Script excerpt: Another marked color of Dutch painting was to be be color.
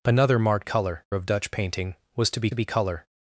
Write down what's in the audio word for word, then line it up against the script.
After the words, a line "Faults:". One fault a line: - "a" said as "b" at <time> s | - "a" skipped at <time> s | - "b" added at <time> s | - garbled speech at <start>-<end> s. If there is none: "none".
Another marked color of Dutch painting was to be be color.
Faults:
none